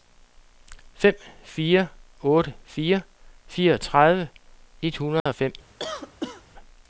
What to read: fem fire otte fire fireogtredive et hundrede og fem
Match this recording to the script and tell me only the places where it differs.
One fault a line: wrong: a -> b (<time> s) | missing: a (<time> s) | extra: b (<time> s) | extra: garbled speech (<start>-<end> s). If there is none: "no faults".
no faults